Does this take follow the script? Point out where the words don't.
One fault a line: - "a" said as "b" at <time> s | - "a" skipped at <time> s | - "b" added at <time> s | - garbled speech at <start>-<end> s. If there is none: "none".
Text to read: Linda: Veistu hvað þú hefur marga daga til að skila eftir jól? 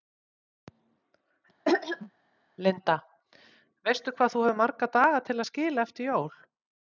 none